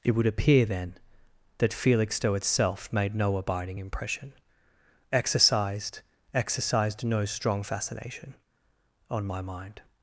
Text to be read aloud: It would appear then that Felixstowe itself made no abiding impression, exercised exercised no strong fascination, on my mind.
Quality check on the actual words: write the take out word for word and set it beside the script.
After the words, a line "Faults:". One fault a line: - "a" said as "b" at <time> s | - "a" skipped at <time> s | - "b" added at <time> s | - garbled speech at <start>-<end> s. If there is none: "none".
It would appear then that Felixstowe itself made no abiding impression, exercised exercised no strong fascination, on my mind.
Faults:
none